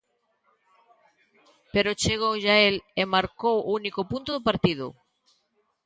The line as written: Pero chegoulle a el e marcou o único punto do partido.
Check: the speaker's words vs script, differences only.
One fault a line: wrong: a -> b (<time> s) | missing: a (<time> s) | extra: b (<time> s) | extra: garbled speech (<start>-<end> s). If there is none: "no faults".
no faults